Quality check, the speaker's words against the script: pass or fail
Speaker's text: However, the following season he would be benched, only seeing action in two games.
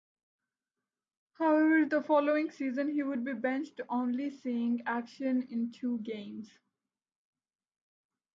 pass